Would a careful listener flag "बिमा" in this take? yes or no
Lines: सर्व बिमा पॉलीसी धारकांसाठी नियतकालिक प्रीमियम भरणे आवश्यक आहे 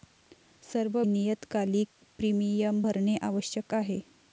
yes